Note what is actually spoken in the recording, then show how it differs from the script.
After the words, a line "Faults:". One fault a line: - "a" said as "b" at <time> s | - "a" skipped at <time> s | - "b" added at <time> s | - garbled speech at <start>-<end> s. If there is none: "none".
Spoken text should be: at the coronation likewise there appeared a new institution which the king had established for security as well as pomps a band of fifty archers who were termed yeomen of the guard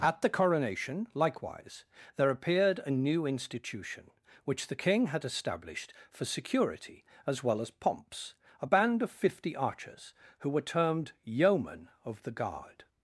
at the coronation likewise there appeared a new institution which the king had established for security as well as pomps a band of fifty archers who were termed yeomen of the guard
Faults:
none